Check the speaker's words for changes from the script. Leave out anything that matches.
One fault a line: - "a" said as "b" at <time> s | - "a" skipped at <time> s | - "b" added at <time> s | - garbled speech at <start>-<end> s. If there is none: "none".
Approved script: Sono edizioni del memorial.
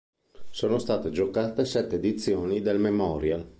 - "state giocate sette" added at 0.8 s